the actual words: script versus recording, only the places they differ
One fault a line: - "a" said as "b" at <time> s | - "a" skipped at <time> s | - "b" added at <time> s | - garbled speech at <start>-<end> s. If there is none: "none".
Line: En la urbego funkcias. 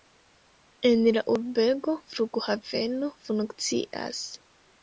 - "flughaveno" added at 2.1 s